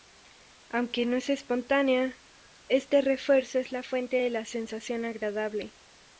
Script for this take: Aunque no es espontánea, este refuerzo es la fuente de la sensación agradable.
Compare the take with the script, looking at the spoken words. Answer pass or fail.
pass